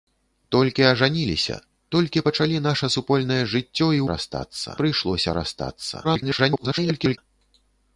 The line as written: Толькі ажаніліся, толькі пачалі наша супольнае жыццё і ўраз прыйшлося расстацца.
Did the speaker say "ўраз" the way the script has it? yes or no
no